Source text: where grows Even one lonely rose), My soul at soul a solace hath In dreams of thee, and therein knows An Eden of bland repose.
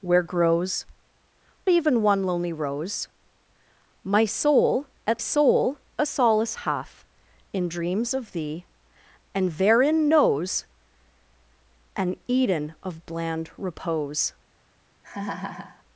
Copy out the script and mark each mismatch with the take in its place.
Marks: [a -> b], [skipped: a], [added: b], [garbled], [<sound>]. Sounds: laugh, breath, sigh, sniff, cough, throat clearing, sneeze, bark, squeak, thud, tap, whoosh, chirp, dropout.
where grows Even one lonely rose), My soul at soul a solace hath In dreams of thee, and therein knows An Eden of bland repose. [laugh]